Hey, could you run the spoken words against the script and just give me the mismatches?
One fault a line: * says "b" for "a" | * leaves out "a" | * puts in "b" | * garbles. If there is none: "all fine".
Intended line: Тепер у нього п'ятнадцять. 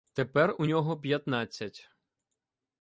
all fine